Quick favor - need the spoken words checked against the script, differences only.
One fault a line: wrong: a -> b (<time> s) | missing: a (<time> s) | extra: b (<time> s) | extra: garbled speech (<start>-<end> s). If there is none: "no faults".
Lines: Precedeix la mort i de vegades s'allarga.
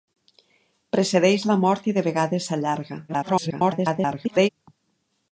extra: garbled speech (3.1-4.5 s)